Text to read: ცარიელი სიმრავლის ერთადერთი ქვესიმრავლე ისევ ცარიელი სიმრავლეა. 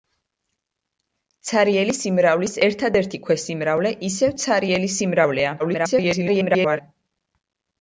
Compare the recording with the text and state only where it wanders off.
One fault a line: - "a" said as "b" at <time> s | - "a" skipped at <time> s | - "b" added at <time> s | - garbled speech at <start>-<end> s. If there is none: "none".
- garbled speech at 5.6-6.8 s